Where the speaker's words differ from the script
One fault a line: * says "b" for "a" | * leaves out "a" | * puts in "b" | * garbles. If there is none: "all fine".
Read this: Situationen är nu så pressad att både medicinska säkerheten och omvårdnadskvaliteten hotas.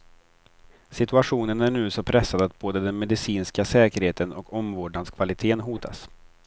* puts in "den"